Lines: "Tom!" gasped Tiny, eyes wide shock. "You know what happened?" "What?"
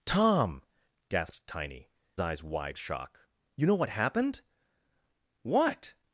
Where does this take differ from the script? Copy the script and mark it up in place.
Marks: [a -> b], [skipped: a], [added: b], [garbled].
"Tom!" gasped Tiny, eyes wide shock. "You know what happened?" "What?"